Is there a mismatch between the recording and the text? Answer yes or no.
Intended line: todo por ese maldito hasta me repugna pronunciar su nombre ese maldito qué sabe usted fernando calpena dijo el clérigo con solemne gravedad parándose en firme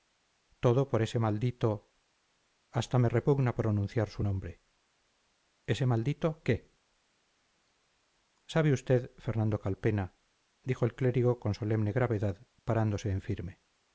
no